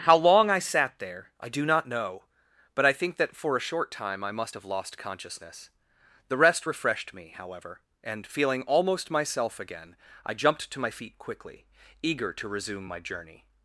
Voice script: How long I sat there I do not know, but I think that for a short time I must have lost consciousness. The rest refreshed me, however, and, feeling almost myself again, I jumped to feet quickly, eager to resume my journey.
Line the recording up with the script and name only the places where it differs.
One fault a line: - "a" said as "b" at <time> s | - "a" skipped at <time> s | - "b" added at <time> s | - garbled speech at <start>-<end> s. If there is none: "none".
- "my" added at 10.8 s